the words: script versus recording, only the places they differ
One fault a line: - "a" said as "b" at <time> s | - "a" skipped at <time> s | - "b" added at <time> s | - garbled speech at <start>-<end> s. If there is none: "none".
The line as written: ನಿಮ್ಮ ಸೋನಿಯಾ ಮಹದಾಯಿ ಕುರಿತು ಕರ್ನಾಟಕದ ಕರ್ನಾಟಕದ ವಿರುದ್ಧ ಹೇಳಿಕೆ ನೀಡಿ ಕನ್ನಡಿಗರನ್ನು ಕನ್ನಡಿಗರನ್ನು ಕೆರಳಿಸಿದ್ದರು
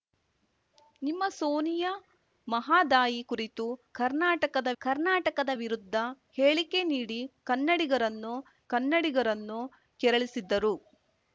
none